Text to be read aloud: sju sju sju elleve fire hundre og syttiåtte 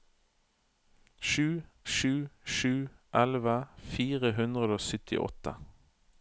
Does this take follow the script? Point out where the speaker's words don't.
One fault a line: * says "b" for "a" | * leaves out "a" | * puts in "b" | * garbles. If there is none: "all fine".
all fine